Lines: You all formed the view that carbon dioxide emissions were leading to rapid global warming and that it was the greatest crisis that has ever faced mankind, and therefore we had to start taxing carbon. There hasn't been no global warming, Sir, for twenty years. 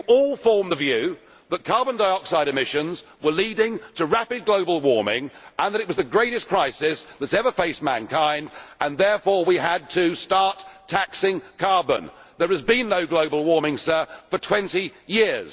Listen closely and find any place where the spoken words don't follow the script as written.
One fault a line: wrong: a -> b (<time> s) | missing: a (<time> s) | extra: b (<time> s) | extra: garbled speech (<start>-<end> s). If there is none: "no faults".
wrong: hasn't -> has (12.5 s)